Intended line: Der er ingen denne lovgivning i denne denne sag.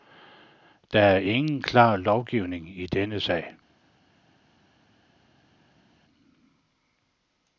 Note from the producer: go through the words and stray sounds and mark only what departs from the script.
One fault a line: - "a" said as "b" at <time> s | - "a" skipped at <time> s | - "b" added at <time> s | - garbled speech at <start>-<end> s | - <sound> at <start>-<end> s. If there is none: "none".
- "denne" said as "klar" at 1.6 s
- "denne" skipped at 3.2 s